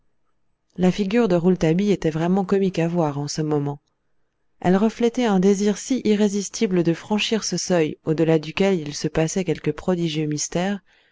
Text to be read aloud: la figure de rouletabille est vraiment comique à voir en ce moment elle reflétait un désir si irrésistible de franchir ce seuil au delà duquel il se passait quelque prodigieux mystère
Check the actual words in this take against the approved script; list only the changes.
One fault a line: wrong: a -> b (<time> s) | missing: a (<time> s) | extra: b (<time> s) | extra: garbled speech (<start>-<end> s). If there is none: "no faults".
wrong: est -> était (1.9 s)